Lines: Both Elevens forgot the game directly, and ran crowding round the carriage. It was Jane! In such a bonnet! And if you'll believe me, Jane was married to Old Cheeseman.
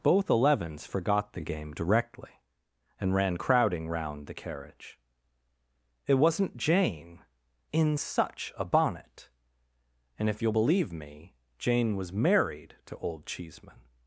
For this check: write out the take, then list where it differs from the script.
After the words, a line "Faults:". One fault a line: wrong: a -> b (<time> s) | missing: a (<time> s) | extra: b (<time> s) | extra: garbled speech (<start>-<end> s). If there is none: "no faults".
Both Elevens forgot the game directly, and ran crowding round the carriage. It wasn't Jane! In such a bonnet! And if you'll believe me, Jane was married to Old Cheeseman.
Faults:
wrong: was -> wasn't (6.1 s)